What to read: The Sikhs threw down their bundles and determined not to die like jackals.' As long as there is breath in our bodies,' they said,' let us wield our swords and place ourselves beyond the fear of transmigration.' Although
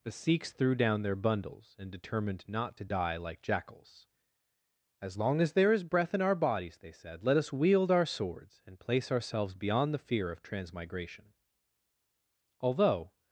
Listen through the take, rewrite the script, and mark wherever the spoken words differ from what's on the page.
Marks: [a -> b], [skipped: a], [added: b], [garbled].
The Sikhs threw down their bundles and determined not to die like jackals.' As long as there is breath in our bodies,' they said,' let us wield our swords and place ourselves beyond the fear of transmigration.' Although